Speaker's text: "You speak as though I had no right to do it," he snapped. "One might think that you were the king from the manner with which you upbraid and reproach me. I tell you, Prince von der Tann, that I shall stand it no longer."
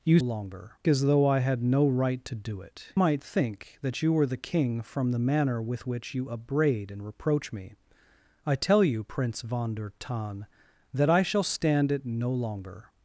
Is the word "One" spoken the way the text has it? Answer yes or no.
no